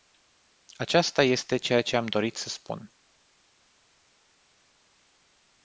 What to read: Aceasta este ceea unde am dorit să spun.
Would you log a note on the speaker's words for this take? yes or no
yes